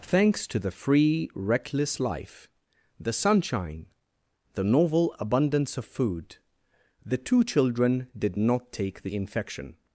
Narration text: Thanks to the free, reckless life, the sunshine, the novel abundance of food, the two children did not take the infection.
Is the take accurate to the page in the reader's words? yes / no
yes